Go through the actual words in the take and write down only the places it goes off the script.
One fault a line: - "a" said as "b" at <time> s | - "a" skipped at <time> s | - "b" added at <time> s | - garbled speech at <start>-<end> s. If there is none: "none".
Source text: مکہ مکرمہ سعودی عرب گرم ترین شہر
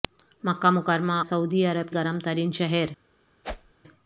none